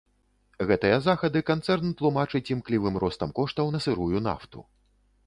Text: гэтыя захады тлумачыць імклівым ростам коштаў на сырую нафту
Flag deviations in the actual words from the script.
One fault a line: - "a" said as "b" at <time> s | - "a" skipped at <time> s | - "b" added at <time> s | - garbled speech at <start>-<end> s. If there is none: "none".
- "канцэрн" added at 1.5 s